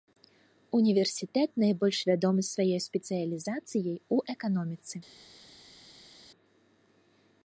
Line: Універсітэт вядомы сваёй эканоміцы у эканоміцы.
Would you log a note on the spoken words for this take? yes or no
yes